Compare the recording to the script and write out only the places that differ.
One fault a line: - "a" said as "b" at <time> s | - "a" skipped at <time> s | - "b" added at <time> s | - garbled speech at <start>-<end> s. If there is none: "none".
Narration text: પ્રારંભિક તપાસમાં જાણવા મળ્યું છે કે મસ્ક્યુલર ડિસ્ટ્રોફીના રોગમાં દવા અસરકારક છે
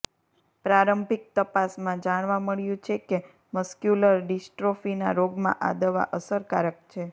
- "આ" added at 5.6 s